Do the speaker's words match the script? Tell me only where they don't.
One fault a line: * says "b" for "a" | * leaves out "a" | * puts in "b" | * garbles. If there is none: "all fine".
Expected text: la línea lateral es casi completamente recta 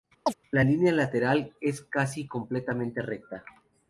all fine